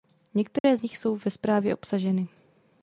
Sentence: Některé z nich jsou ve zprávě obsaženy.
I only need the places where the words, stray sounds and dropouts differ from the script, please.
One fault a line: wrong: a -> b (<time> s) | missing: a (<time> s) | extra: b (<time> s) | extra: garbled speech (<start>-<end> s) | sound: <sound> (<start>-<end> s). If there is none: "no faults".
sound: dropout (0.6-0.6 s)